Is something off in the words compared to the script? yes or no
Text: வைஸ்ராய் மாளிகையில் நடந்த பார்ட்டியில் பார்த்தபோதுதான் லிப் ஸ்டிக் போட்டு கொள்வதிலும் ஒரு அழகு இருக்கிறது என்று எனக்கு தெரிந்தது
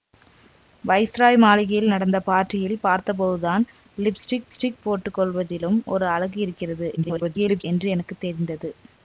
yes